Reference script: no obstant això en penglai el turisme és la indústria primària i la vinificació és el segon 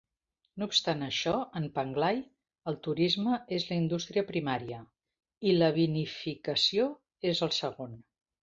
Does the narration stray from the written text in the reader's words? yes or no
no